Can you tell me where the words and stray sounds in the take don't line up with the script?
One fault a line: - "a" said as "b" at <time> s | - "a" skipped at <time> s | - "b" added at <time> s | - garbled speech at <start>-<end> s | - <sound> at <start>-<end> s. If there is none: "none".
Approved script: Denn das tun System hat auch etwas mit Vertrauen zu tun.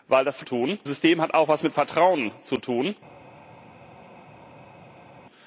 none